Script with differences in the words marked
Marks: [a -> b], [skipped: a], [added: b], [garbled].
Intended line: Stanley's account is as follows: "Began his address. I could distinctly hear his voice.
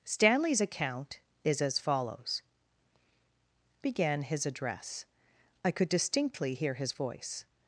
Stanley's account is as follows: "Began his address. I could distinctly hear his voice.